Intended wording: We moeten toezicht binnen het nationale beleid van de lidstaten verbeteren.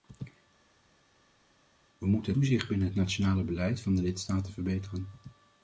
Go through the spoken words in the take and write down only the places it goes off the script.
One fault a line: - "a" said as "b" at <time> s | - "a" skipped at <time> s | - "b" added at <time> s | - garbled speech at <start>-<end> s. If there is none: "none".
none